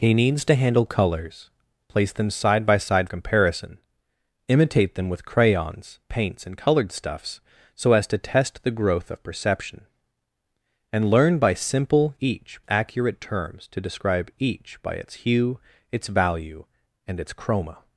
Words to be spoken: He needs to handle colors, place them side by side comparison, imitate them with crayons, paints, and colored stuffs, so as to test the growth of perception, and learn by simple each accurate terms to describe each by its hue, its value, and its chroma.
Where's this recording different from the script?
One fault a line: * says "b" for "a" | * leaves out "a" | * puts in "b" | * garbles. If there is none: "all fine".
all fine